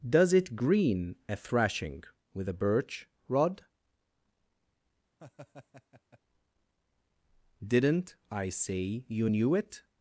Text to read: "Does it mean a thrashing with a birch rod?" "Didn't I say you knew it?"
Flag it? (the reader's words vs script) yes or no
yes